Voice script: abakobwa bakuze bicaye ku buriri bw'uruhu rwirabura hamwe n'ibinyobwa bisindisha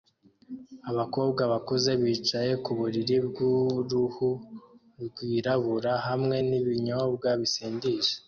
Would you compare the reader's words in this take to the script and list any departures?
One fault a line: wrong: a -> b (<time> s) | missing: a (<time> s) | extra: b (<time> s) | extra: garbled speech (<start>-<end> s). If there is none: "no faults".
no faults